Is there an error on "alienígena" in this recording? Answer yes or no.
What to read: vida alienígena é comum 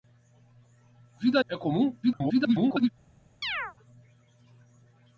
yes